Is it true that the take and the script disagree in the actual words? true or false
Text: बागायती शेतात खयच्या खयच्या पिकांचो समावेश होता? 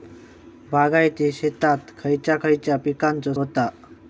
true